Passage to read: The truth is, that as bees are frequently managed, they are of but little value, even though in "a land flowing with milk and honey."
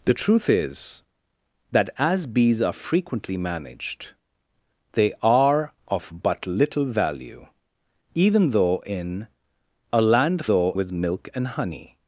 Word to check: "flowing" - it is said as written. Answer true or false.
false